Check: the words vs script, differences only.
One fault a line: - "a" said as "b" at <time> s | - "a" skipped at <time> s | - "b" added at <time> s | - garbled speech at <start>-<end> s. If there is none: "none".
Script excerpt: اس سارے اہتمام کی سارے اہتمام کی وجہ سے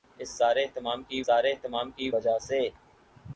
none